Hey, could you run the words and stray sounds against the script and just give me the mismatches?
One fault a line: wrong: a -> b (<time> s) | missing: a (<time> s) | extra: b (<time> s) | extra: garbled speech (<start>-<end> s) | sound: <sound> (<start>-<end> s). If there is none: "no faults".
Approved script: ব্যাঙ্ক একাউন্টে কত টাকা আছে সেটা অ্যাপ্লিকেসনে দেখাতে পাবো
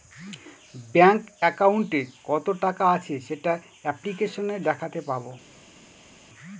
no faults